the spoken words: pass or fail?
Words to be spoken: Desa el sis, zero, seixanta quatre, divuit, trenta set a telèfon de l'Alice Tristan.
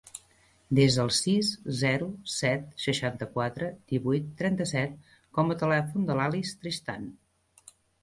fail